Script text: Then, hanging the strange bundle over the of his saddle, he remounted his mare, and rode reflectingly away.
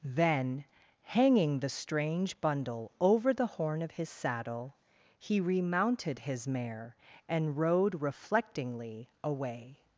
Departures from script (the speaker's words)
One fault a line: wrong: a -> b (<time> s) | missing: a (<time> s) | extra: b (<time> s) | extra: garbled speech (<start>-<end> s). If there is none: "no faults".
extra: horn (3.5 s)